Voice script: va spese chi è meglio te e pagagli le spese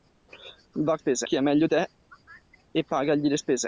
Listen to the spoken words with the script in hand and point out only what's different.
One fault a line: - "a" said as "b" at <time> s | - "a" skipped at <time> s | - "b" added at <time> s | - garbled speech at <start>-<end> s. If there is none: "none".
none